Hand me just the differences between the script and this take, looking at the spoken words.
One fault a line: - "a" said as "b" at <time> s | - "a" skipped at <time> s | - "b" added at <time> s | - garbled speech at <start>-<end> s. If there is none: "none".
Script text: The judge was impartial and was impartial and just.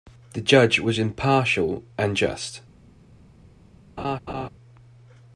- "was impartial and" skipped at 2.2 s